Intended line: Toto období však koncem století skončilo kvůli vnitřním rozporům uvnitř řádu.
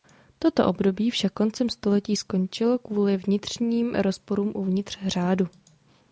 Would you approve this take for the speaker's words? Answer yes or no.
yes